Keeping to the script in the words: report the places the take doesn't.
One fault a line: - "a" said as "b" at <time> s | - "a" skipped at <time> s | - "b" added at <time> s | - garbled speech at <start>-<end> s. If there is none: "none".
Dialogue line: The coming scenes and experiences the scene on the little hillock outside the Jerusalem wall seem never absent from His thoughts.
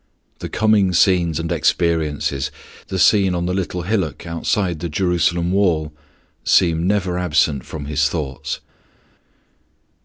none